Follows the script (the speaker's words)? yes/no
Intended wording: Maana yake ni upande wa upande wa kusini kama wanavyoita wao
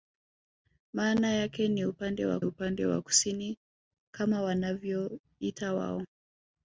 yes